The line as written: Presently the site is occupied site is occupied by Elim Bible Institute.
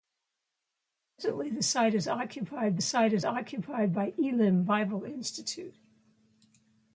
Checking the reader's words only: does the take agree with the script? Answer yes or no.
yes